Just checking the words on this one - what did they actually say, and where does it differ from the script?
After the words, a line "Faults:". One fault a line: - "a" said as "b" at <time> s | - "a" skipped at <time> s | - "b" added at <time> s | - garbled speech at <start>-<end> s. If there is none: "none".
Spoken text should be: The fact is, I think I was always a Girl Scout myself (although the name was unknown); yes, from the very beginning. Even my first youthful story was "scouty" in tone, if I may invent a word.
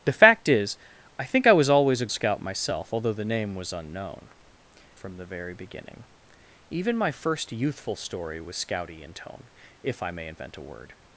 The fact is, I think I was always a Scout myself (although the name was unknown); from the very beginning. Even my first youthful story was "scouty" in tone, if I may invent a word.
Faults:
- "Girl" skipped at 2.1 s
- "yes" skipped at 4.3 s